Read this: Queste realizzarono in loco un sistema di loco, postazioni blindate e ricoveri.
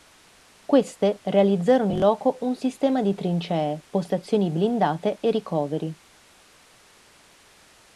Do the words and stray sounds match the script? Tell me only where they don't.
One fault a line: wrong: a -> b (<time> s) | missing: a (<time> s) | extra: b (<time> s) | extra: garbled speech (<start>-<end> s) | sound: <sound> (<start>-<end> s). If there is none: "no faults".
wrong: loco -> trincee (3.1 s)